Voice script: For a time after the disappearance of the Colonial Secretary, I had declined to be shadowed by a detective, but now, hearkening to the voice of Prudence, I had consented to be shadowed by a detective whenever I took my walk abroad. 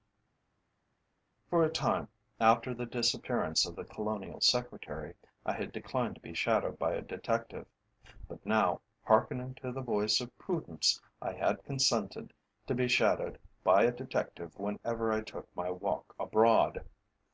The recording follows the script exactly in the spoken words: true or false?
true